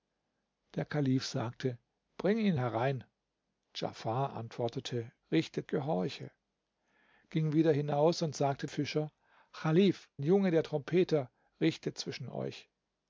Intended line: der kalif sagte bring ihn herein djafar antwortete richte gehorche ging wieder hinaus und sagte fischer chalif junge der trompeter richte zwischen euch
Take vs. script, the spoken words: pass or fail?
pass